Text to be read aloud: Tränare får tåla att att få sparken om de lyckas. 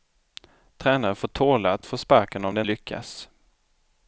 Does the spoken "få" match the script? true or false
true